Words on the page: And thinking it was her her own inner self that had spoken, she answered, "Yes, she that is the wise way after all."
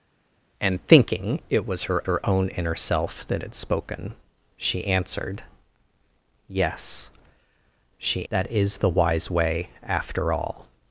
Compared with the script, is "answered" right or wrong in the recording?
right